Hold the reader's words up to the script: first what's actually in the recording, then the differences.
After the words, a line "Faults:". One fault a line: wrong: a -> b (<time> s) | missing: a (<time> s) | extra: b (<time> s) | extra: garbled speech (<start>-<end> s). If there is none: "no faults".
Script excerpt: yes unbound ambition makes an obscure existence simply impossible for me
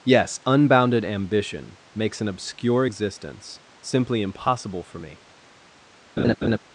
yes unbounded ambition makes an obscure existence simply impossible for me
Faults:
wrong: unbound -> unbounded (0.5 s)